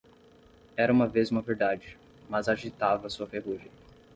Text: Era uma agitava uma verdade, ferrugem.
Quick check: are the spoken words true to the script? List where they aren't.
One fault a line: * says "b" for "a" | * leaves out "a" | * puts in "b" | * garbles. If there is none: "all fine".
* says "vez" for "agitava"
* puts in "mas agitava sua"